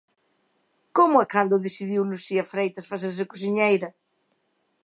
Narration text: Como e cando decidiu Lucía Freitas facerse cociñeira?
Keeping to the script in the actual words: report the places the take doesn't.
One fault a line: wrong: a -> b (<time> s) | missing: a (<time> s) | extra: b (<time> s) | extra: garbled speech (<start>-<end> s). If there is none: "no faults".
no faults